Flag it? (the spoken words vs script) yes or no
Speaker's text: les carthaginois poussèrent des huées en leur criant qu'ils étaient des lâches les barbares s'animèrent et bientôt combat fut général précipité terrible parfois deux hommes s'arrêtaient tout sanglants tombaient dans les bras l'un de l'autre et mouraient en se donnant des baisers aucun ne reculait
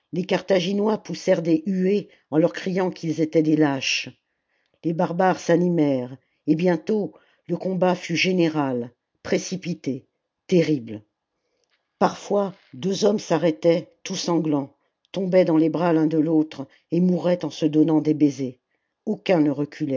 yes